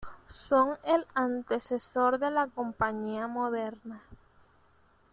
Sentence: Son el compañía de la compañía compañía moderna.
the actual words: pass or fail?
fail